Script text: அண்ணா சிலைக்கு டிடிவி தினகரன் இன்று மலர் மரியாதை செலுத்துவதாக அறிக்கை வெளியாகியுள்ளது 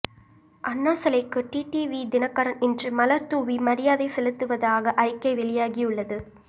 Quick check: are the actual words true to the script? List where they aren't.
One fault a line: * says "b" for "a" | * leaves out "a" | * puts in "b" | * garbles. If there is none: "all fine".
* puts in "தூவி"